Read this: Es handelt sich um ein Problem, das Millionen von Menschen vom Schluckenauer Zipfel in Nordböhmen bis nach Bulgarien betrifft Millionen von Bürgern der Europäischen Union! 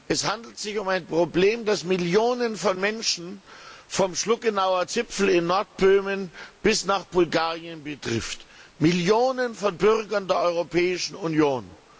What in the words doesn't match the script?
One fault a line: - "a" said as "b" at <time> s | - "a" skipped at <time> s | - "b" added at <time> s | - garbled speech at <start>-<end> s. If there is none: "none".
none